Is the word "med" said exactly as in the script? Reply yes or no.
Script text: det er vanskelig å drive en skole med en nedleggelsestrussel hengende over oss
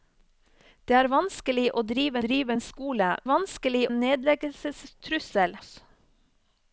no